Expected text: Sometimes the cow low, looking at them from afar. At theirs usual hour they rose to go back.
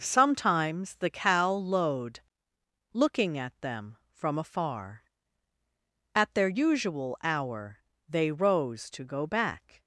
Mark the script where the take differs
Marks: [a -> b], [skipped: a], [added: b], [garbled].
Sometimes the cow [low, -> lowed] looking at them from afar. At [theirs -> their] usual hour they rose to go back.